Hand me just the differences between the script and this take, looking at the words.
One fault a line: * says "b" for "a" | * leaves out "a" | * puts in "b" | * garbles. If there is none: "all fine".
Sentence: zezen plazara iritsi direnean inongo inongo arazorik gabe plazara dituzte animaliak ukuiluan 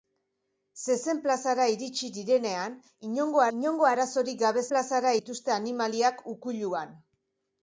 all fine